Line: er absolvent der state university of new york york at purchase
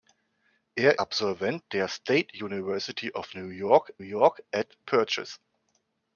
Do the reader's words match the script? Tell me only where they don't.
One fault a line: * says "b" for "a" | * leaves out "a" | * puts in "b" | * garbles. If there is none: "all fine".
all fine